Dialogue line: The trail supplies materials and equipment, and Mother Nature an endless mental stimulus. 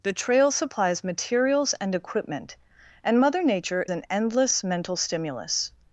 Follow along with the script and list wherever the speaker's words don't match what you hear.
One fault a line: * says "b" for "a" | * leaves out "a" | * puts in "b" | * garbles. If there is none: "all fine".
all fine